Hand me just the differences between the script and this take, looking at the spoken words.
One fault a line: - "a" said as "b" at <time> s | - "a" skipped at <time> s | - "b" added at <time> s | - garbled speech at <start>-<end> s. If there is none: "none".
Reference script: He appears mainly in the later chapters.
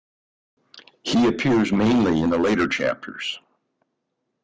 none